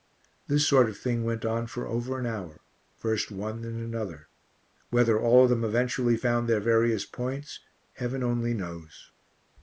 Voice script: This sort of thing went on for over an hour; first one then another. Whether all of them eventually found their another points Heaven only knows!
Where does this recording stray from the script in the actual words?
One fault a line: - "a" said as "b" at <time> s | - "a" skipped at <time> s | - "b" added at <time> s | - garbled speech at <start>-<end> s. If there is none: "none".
- "another" said as "various" at 6.6 s